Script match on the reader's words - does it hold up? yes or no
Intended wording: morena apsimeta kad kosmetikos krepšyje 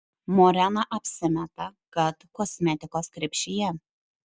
yes